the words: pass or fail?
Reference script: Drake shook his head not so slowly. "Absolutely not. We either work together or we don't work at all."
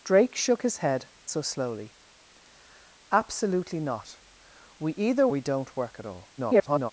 fail